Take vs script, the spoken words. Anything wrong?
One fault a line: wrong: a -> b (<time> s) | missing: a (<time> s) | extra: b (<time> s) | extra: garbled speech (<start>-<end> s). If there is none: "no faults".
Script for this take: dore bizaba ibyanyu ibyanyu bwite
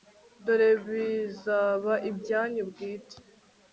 missing: ibyanyu (2.6 s)